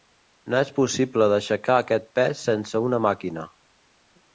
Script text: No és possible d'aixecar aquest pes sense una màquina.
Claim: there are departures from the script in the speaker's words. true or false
false